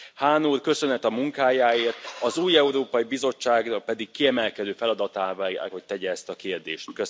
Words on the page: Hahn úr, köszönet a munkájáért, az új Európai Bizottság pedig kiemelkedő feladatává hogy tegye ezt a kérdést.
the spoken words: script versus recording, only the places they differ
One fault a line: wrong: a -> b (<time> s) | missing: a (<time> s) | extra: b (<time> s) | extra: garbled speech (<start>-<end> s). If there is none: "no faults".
no faults